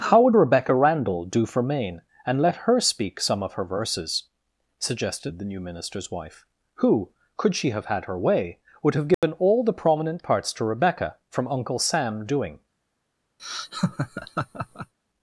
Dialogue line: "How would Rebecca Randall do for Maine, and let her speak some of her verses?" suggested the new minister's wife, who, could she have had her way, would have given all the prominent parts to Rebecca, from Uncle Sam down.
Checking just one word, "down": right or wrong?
wrong